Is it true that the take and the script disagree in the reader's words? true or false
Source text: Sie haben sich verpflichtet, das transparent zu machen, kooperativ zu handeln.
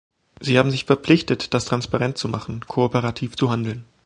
false